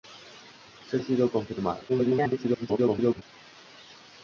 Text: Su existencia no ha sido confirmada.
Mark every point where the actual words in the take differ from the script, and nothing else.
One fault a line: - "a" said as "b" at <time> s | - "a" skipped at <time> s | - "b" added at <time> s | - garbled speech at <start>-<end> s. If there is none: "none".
- "existencia no" skipped at 1.0 s
- garbled speech at 1.9-3.2 s